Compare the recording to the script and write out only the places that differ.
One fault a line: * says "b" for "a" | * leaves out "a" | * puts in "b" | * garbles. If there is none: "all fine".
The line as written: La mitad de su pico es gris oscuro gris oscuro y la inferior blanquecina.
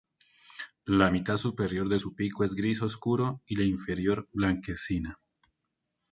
* puts in "superior"
* leaves out "gris oscuro"